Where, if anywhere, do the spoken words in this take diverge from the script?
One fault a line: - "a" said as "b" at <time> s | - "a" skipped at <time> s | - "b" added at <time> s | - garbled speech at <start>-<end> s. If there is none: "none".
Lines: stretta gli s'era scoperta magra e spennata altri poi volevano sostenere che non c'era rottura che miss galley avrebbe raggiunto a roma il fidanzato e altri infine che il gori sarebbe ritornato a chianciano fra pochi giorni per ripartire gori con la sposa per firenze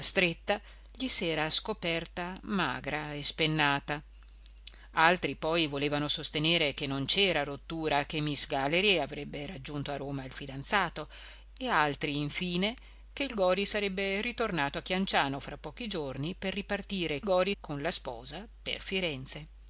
none